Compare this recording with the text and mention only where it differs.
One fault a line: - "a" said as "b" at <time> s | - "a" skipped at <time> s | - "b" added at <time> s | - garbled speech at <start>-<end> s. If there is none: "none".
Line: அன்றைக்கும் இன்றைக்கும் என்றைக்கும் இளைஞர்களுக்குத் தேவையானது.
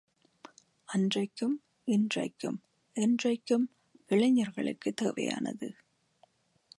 none